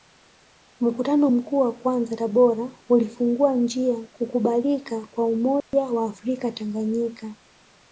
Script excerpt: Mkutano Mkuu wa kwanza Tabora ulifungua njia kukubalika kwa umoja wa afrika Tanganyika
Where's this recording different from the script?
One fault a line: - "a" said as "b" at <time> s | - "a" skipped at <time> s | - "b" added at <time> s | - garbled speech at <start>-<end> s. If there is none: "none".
none